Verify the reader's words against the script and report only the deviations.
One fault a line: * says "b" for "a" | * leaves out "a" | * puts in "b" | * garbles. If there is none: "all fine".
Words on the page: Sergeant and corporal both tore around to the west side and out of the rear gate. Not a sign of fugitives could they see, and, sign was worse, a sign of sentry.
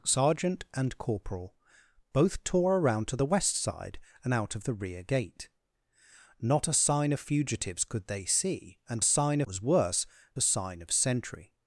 all fine